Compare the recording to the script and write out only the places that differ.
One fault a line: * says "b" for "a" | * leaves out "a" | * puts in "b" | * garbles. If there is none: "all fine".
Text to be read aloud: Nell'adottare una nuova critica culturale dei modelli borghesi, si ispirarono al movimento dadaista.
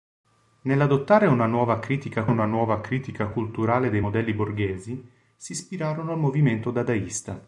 * puts in "una nuova critica"